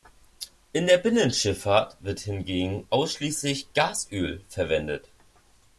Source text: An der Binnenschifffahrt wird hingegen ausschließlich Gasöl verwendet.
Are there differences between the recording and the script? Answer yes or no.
yes